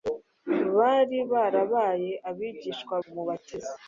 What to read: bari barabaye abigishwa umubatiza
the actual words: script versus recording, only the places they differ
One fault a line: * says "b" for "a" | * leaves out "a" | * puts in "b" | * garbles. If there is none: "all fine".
all fine